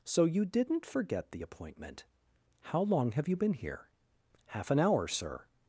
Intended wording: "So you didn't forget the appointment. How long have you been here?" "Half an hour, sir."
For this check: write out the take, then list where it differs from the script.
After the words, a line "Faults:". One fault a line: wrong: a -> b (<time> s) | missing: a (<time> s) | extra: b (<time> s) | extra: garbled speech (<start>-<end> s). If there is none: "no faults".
"So you didn't forget the appointment. How long have you been here?" "Half an hour, sir."
Faults:
no faults